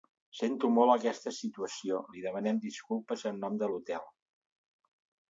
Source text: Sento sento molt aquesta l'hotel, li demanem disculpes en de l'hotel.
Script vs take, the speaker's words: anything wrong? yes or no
yes